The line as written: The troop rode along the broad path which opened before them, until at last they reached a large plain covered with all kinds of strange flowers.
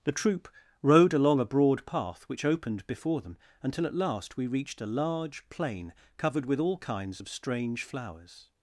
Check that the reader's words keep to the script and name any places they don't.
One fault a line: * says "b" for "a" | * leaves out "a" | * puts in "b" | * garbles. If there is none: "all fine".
* says "a" for "the"
* says "we" for "they"